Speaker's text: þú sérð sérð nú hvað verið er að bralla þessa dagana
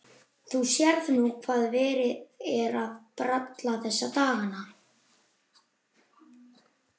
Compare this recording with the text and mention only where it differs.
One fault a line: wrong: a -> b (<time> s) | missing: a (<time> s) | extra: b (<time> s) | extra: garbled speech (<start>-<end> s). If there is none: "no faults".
missing: sérð (1.1 s)